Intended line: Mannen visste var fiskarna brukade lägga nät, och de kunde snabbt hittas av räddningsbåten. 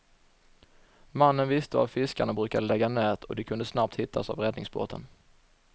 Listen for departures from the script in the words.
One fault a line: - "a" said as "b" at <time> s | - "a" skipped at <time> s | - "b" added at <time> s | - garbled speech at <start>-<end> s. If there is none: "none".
none